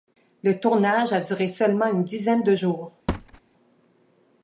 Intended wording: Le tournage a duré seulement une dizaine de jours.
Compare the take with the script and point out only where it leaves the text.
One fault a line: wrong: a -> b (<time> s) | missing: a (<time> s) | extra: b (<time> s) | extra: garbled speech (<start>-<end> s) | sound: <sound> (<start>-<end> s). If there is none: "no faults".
sound: thud (3.1-3.4 s)